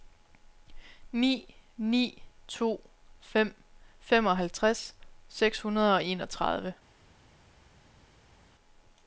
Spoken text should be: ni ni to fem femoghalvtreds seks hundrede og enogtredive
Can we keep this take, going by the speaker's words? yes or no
yes